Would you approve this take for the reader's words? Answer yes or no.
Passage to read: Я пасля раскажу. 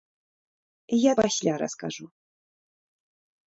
yes